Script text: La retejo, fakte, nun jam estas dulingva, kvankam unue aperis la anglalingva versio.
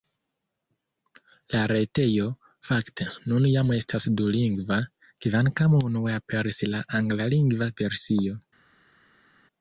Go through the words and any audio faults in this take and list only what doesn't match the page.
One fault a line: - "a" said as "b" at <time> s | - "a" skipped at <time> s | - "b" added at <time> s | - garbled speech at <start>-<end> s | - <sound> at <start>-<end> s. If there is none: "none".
none